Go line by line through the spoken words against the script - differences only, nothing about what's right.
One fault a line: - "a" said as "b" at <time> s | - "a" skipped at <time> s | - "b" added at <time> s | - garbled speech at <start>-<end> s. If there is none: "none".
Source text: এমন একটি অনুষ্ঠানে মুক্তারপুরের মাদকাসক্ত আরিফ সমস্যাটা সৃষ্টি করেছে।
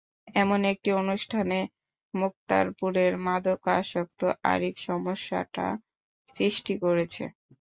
none